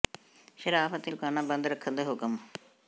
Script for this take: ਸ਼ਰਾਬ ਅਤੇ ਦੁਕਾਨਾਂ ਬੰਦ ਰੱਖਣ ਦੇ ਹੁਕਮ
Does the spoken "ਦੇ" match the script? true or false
true